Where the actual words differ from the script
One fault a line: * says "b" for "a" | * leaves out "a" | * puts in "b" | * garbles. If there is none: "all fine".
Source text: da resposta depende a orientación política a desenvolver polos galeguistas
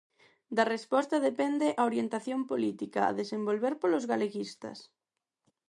all fine